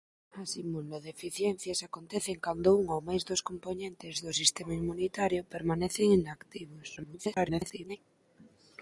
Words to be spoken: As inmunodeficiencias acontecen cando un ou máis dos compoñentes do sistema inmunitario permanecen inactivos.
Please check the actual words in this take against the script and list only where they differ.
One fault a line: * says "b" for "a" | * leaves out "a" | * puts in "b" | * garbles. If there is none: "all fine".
* garbles